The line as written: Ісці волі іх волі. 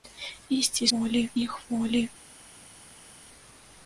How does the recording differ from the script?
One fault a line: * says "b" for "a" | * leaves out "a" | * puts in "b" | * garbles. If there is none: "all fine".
all fine